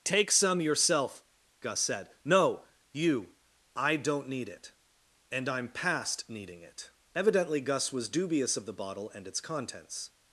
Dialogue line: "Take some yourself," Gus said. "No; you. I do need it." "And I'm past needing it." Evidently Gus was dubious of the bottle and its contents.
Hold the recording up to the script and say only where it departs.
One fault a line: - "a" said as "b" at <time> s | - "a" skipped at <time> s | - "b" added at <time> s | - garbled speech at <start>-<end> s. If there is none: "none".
- "do" said as "don't" at 4.0 s